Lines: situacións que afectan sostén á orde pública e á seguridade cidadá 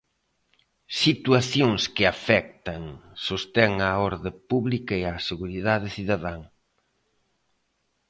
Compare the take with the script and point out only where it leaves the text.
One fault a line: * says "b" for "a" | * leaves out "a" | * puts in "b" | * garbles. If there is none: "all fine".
all fine